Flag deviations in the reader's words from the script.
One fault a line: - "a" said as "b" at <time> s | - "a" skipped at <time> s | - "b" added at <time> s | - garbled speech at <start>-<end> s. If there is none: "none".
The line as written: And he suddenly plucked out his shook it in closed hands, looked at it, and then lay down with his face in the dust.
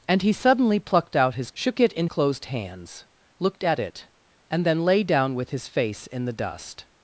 none